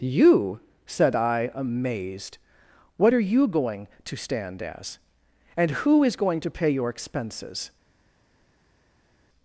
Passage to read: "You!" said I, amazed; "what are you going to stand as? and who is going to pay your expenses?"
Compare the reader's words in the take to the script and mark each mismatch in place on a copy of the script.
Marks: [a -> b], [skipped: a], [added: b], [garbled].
"You!" said I, amazed; "what are you going to stand as? and who is going to pay your expenses?"